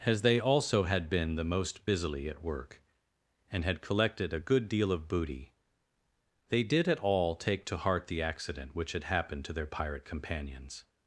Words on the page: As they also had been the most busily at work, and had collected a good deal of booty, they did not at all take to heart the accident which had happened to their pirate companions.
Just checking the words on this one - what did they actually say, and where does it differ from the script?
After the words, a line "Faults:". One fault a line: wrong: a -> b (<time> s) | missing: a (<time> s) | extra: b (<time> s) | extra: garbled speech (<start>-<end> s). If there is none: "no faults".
As they also had been the most busily at work, and had collected a good deal of booty, they did at all take to heart the accident which had happened to their pirate companions.
Faults:
missing: not (6.9 s)